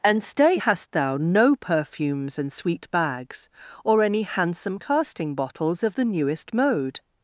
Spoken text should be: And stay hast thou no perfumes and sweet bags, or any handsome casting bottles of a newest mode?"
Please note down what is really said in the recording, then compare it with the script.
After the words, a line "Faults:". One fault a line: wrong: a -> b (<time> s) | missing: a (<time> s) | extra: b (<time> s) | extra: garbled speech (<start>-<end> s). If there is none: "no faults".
And stay hast thou no perfumes and sweet bags, or any handsome casting bottles of the newest mode?"
Faults:
wrong: a -> the (5.9 s)